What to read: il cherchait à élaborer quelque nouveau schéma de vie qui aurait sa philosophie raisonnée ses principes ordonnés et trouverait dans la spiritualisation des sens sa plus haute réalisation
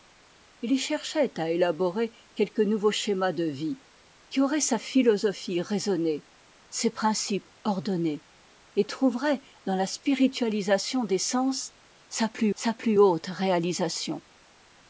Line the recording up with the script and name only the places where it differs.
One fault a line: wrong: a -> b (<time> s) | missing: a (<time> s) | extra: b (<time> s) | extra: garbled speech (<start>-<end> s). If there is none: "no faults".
extra: sa plus (12.5 s)